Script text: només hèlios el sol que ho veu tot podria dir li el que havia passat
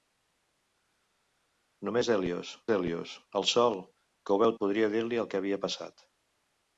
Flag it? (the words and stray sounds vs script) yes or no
yes